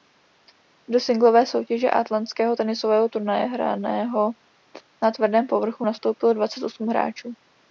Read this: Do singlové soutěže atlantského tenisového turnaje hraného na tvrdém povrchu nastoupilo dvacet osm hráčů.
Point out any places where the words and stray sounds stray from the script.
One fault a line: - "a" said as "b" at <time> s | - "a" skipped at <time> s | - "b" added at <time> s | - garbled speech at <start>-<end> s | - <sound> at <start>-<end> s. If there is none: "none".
none